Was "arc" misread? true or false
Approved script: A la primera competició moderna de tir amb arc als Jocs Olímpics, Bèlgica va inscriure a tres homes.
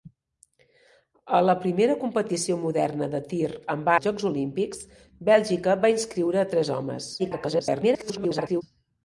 true